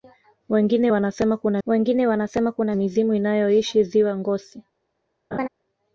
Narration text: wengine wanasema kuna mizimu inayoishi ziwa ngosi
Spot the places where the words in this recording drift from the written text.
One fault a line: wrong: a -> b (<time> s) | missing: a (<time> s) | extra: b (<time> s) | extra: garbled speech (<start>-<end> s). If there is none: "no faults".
extra: wengine wanasema kuna (1.7 s)